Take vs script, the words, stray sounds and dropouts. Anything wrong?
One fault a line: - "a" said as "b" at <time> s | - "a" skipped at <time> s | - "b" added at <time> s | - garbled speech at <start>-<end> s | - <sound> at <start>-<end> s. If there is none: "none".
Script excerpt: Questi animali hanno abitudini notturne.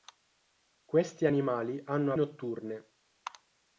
- "abitudini" skipped at 2.1 s